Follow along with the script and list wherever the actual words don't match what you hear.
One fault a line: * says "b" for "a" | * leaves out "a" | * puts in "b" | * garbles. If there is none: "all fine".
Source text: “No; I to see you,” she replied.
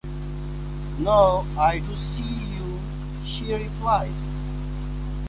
all fine